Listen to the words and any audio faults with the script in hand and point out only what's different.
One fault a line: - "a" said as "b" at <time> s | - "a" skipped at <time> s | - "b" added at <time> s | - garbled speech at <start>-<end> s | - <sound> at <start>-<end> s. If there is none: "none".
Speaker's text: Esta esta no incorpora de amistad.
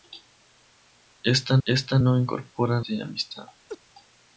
- laugh at 3.7-3.8 s